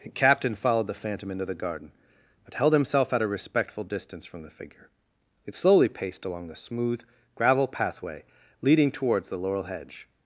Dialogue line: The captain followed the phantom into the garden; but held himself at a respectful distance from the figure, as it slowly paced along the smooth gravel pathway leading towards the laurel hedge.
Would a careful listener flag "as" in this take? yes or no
yes